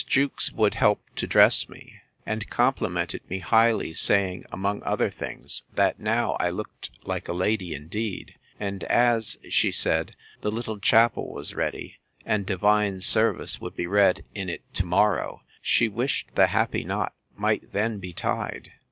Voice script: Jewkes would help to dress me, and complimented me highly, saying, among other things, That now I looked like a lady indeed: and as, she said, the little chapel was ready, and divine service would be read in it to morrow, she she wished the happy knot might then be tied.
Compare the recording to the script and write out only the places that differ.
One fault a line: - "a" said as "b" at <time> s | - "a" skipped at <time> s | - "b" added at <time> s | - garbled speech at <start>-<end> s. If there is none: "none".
- "she" skipped at 15.9 s